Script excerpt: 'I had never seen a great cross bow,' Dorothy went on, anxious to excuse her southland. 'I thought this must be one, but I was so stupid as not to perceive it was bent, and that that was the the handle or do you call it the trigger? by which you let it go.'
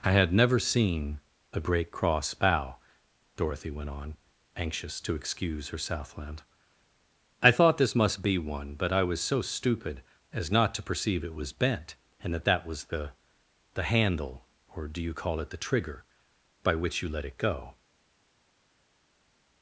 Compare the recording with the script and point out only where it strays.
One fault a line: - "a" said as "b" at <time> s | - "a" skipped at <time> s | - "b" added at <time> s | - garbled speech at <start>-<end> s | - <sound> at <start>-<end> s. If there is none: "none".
none